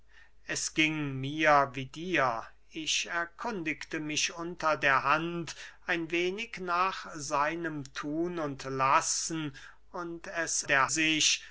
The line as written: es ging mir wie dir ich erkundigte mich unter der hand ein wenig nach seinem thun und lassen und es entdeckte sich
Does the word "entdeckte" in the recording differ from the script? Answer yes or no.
yes